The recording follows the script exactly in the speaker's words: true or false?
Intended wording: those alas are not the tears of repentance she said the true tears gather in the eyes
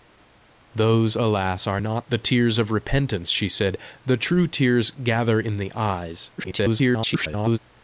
false